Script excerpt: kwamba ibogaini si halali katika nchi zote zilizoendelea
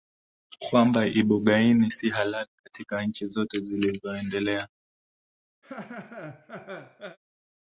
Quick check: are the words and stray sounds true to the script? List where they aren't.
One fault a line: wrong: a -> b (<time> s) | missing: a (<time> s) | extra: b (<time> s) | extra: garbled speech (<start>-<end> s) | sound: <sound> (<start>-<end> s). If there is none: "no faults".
sound: laugh (5.6-7.2 s)